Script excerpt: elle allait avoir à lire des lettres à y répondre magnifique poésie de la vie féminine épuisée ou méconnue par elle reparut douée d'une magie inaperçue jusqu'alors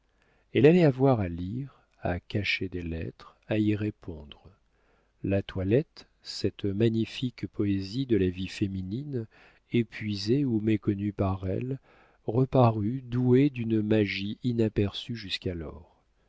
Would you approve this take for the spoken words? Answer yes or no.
no